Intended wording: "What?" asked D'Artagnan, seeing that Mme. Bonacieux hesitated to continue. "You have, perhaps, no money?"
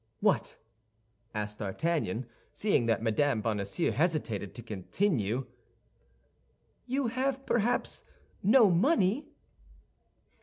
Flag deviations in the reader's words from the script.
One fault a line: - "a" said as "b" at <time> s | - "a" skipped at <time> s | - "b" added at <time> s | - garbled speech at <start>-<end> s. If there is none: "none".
none